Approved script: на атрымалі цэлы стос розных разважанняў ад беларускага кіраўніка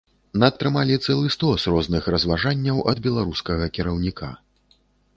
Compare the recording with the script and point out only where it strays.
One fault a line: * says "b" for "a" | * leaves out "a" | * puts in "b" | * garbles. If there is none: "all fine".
all fine